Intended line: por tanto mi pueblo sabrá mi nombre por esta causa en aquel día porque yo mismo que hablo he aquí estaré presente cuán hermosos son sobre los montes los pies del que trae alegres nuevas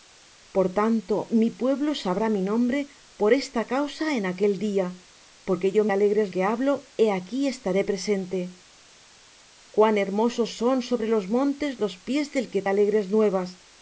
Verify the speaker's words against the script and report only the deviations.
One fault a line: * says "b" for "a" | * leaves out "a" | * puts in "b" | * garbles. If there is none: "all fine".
* says "alegres" for "mismo"
* leaves out "trae"